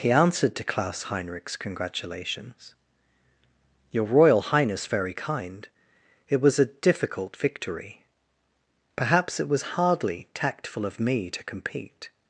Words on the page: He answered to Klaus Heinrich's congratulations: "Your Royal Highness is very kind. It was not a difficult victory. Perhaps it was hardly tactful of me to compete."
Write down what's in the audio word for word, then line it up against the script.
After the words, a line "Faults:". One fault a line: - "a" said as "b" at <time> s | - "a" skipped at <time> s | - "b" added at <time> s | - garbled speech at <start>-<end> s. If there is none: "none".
He answered to Klaus Heinrich's congratulations: "Your Royal Highness very kind. It was a difficult victory. Perhaps it was hardly tactful of me to compete."
Faults:
- "is" skipped at 4.9 s
- "not" skipped at 6.6 s